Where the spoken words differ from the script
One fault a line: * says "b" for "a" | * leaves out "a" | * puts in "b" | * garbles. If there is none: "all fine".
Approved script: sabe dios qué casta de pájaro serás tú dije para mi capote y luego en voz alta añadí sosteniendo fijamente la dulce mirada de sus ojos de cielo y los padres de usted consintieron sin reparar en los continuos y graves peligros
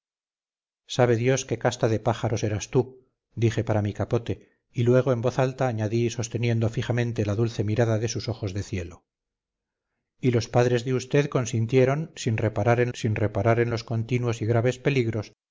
* puts in "sin reparar en"